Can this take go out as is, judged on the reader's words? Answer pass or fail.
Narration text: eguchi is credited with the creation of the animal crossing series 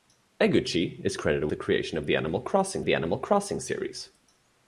fail